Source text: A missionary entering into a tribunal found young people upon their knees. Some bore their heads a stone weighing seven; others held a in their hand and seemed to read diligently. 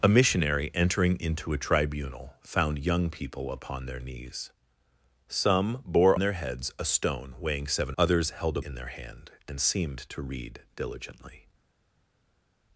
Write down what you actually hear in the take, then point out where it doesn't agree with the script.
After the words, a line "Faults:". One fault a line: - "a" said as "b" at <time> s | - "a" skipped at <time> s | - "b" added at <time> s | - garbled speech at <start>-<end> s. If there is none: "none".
A missionary entering into a tribunal found young people upon their knees. Some bore their heads a stone weighing seven; others held a in their hand and seemed to read diligently.
Faults:
none